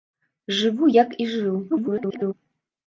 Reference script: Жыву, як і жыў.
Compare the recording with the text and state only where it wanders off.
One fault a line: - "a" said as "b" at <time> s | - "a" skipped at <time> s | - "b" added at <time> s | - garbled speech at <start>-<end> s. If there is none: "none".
- garbled speech at 1.7-2.3 s